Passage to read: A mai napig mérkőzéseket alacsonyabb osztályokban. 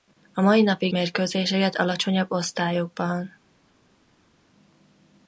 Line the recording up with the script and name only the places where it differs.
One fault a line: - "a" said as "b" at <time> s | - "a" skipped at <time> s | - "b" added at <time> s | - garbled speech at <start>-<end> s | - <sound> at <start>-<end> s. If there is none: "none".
none